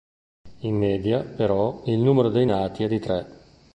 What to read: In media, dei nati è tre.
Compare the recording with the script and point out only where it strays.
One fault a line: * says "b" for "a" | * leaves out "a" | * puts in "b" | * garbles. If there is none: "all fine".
* puts in "però il numero"
* puts in "di"